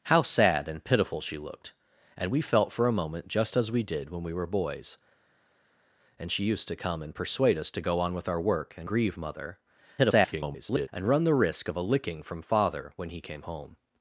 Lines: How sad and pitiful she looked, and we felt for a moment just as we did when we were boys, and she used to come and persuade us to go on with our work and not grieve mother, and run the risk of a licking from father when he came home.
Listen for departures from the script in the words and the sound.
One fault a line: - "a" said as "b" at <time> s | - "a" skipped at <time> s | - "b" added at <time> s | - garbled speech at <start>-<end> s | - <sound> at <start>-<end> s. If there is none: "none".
- "not" skipped at 8.9 s
- garbled speech at 10.0-10.9 s